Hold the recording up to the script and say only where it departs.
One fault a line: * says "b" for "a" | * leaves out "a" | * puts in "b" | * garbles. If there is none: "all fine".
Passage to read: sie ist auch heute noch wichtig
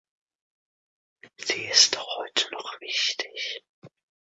all fine